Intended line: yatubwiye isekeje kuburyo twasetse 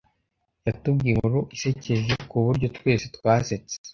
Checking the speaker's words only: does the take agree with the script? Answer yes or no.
no